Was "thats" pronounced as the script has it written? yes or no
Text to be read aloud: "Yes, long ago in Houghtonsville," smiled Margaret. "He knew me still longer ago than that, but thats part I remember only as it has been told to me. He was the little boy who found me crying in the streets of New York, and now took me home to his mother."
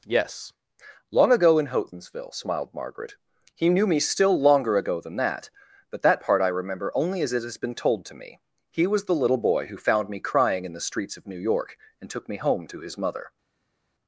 no